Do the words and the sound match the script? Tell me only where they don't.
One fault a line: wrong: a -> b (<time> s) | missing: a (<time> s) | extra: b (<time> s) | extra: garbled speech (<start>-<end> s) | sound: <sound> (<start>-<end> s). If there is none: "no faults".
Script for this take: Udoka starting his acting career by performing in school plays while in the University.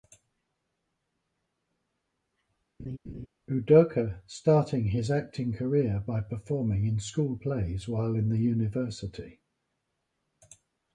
sound: laugh (2.8-3.3 s)